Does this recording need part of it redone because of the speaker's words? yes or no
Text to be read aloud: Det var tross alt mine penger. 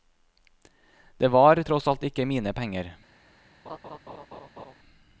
yes